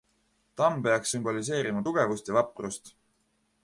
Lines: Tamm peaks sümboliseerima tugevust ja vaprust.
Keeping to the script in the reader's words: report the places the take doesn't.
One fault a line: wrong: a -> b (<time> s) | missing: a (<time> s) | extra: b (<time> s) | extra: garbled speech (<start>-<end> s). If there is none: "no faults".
no faults